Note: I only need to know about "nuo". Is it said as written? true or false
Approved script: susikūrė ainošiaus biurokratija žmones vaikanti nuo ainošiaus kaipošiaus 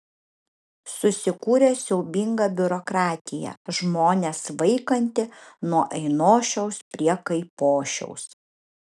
true